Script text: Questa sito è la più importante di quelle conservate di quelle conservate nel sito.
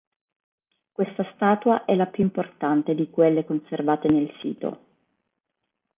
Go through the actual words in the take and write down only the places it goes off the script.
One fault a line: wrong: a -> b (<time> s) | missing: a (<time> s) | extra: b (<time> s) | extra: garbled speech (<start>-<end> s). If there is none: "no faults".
wrong: sito -> statua (1.4 s)
missing: di quelle conservate (4.1 s)